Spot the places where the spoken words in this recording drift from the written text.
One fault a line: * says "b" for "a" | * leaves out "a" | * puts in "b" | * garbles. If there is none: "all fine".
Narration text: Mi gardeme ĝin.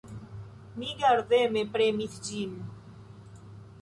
* puts in "premis"